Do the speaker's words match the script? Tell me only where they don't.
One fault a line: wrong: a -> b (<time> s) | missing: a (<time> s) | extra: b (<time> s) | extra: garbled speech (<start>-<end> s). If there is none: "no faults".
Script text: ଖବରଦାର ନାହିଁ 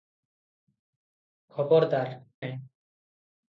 no faults